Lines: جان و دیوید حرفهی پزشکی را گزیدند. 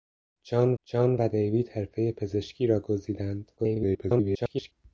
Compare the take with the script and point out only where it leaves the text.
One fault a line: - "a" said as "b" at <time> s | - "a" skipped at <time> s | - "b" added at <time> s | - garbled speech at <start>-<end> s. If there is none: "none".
- "جان" added at 0.8 s
- garbled speech at 3.6-4.7 s